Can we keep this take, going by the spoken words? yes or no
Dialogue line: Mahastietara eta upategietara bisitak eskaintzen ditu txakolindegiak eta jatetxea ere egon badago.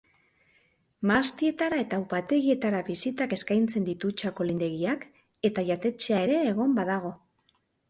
yes